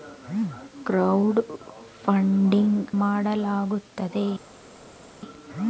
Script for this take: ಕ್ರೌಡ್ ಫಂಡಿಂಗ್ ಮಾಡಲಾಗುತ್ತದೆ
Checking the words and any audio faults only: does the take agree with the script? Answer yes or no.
yes